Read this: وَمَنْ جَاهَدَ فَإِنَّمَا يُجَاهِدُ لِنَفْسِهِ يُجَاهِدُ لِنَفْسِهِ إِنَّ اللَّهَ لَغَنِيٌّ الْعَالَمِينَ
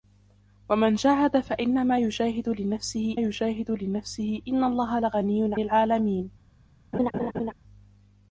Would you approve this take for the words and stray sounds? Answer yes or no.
no